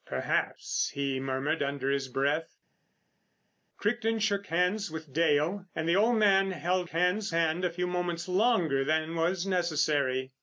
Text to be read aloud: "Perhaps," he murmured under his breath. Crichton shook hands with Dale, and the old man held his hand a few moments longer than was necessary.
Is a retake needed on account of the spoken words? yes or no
yes